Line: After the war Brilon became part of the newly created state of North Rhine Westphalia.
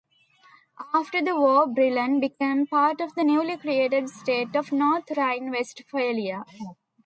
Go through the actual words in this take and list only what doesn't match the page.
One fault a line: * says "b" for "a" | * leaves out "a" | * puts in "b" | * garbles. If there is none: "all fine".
all fine